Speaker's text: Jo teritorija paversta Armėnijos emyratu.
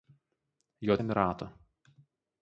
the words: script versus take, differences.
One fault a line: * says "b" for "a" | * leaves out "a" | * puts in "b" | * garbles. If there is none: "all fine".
* leaves out "teritorija paversta Armėnijos"